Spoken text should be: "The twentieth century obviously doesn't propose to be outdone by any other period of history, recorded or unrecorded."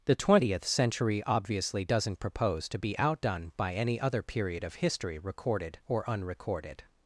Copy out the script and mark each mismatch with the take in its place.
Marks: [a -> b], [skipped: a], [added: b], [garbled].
"The twentieth century obviously doesn't propose to be outdone by any other period of history, recorded or unrecorded."